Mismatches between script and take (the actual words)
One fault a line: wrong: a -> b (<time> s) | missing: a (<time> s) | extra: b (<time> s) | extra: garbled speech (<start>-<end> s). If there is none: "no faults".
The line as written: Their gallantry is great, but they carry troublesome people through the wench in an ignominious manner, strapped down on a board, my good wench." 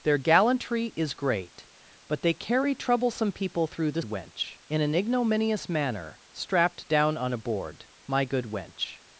no faults